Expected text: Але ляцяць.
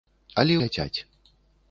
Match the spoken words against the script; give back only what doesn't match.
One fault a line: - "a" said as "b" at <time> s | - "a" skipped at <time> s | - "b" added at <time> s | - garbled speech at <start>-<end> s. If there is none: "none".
none